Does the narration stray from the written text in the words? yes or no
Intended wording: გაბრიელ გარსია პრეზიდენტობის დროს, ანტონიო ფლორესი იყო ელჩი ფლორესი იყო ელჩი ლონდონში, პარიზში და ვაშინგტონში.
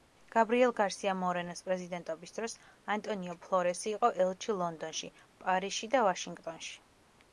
yes